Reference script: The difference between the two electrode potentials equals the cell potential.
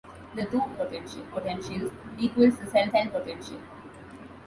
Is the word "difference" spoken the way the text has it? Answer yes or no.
no